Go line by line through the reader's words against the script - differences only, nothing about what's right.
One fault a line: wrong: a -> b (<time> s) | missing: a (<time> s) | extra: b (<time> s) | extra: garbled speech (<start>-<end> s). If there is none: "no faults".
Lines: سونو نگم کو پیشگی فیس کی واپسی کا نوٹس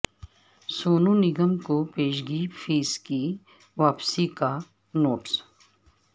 no faults